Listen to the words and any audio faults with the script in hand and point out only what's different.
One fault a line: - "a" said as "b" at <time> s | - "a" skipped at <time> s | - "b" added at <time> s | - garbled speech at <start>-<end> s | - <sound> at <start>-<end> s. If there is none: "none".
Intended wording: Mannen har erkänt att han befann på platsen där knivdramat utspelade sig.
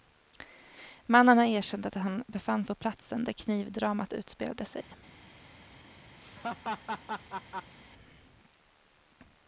- dropout at 4.8-4.9 s
- laugh at 6.2-7.8 s